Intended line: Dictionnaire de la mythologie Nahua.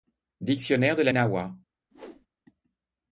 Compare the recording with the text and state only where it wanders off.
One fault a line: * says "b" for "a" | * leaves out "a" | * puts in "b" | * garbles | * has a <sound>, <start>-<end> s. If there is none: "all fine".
* leaves out "mythologie"
* has a whoosh, 1.9-2.3 s